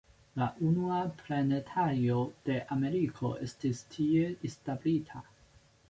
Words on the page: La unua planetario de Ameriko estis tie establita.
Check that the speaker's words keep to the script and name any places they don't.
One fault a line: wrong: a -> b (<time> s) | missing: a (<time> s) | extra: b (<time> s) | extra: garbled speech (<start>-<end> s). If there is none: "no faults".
no faults